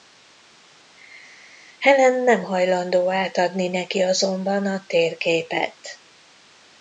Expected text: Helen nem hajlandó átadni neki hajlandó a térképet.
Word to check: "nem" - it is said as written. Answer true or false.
true